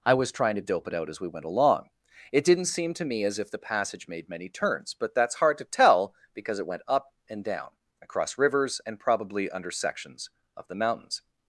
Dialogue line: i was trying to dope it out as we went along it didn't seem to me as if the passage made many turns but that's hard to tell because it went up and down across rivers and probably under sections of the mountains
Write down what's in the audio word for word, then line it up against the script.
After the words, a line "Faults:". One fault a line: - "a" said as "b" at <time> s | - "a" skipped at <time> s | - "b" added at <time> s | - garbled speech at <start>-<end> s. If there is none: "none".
i was trying to dope it out as we went along it didn't seem to me as if the passage made many turns but that's hard to tell because it went up and down across rivers and probably under sections of the mountains
Faults:
none